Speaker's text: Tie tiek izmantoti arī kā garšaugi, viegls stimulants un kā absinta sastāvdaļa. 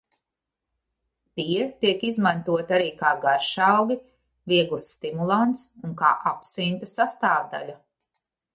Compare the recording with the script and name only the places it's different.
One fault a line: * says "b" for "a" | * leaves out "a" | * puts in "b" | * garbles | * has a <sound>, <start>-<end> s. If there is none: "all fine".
all fine